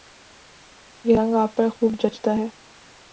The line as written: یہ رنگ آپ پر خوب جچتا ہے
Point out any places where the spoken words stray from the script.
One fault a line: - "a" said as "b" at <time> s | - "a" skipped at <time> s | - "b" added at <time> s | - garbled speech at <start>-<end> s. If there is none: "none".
none